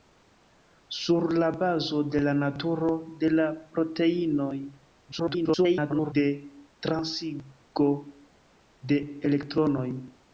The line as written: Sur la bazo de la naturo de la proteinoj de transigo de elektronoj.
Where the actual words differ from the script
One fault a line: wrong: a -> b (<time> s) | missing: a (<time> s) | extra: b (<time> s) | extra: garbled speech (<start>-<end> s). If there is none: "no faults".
extra: garbled speech (5.1-6.1 s)